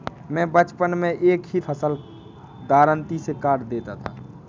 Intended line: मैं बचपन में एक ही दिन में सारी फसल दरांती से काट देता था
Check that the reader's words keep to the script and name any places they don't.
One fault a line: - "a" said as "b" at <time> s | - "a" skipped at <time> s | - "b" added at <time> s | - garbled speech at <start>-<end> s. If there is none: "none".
- "दिन में सारी" skipped at 1.6 s